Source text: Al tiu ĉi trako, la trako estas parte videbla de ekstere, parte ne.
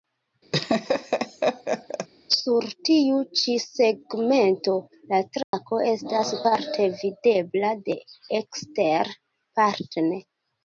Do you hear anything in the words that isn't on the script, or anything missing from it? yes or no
yes